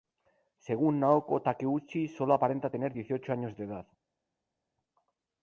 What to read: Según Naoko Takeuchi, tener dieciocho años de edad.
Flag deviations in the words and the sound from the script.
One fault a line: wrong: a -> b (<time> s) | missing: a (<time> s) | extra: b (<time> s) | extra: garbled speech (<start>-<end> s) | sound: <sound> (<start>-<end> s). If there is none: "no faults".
extra: sólo aparenta (2.1 s)